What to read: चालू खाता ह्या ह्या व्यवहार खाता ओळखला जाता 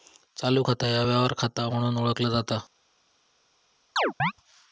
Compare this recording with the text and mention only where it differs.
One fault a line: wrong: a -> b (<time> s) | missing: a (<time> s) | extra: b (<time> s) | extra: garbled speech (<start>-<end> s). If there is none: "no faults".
missing: ह्या (1.0 s)
extra: म्हणून (1.7 s)